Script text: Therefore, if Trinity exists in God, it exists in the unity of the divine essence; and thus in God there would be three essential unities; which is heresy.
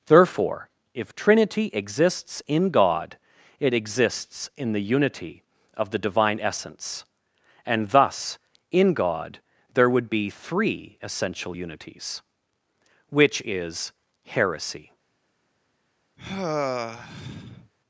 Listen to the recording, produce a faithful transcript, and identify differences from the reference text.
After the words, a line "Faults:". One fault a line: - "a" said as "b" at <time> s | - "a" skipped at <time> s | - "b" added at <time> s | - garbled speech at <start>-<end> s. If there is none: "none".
Therefore, if Trinity exists in God, it exists in the unity of the divine essence; and thus in God there would be three essential unities; which is heresy.
Faults:
none